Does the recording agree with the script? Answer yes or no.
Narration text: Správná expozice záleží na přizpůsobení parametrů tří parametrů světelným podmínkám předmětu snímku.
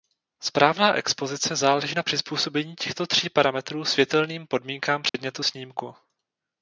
no